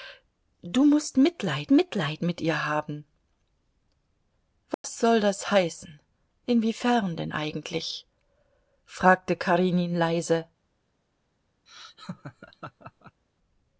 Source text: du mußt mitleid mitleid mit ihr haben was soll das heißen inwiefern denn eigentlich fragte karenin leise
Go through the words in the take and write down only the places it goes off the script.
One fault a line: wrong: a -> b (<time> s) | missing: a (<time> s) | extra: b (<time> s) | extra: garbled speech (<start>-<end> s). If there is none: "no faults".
no faults